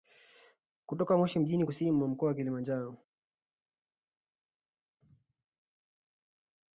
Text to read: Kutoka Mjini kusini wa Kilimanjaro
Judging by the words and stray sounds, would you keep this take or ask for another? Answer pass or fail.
fail